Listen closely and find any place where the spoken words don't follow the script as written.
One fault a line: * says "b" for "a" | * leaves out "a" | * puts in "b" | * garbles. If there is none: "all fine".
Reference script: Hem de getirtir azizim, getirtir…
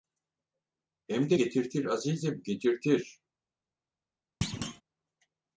all fine